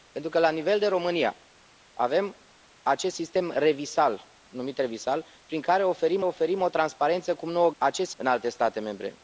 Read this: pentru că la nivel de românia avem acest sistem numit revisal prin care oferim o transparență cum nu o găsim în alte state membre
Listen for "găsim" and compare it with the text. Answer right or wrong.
wrong